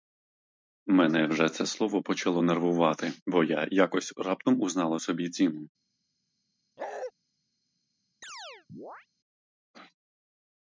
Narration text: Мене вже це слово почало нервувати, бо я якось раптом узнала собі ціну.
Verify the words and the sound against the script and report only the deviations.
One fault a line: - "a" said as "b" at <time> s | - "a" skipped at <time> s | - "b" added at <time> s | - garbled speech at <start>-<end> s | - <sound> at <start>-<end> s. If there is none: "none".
- bark at 6.8-7.1 s
- chirp at 8.2-9.1 s